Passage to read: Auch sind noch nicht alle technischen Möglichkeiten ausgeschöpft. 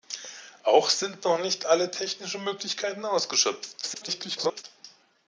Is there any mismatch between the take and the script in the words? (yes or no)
yes